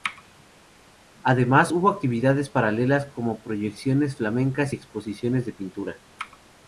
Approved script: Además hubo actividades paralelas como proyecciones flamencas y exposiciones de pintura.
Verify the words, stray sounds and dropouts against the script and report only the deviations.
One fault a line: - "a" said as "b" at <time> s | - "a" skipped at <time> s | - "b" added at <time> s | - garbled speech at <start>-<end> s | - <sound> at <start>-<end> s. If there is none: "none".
none